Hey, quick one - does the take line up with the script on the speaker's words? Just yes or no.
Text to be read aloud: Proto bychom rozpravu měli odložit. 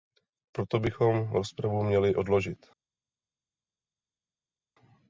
yes